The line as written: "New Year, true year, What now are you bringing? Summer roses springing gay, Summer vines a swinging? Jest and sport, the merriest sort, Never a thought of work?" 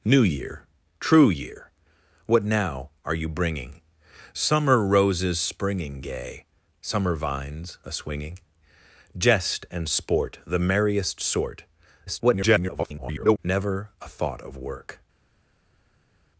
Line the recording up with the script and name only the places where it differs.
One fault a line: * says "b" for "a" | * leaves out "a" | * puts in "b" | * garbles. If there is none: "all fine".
* garbles